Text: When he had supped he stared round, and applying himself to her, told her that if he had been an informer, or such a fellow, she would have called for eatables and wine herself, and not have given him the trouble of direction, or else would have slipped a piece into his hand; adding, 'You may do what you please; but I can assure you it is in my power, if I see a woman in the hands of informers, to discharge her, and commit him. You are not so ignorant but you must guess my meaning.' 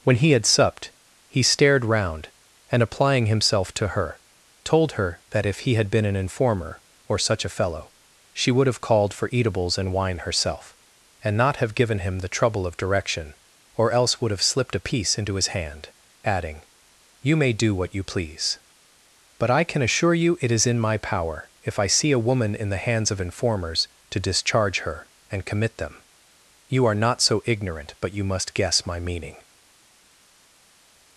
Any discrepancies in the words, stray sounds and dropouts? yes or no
yes